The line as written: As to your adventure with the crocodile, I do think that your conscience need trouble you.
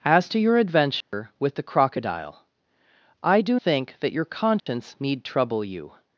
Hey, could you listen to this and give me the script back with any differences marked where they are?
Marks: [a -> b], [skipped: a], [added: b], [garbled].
As to your adventure with the crocodile, I do think that your conscience need trouble you.